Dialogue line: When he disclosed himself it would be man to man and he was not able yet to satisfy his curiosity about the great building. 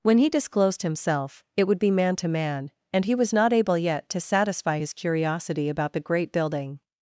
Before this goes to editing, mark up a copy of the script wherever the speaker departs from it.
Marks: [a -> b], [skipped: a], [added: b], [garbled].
When he disclosed himself it would be man to man and he was not able yet to satisfy his curiosity about the great building.